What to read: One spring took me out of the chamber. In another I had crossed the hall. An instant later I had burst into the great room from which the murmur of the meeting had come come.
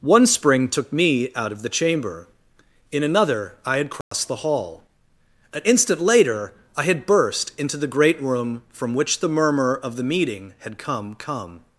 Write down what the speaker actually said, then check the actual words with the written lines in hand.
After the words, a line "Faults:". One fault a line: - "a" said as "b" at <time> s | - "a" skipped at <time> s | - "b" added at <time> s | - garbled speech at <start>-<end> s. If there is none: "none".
One spring took me out of the chamber. In another I had crossed the hall. An instant later I had burst into the great room from which the murmur of the meeting had come come.
Faults:
none